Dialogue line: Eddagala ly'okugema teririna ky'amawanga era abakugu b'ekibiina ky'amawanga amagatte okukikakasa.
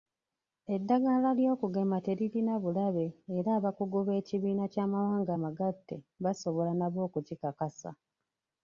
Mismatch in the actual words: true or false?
true